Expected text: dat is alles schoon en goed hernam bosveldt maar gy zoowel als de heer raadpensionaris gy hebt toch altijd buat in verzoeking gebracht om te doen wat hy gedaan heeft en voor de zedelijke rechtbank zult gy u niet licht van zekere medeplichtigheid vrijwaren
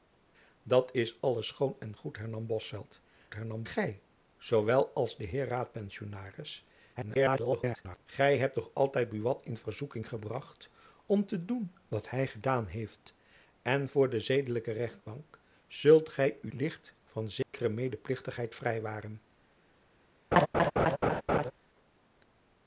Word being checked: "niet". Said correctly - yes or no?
no